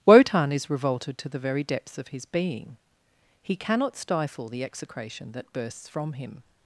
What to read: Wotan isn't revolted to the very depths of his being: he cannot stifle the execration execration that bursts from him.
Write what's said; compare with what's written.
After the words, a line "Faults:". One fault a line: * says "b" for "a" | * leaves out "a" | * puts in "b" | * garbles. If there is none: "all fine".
Wotan is revolted to the very depths of his being: he cannot stifle the execration that bursts from him.
Faults:
* says "is" for "isn't"
* leaves out "execration"